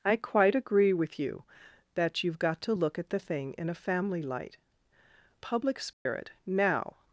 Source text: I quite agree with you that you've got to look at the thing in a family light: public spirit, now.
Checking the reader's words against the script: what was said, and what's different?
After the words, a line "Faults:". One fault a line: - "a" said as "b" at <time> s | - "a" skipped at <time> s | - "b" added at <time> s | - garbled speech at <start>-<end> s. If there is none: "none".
I quite agree with you that you've got to look at the thing in a family light: public spirit, now.
Faults:
none